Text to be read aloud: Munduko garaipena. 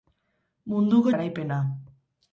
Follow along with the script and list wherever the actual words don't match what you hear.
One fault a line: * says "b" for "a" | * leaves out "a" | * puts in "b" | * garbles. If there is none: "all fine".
all fine